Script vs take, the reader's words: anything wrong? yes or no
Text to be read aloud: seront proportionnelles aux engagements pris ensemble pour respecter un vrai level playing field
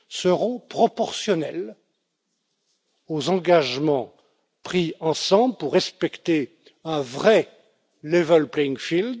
no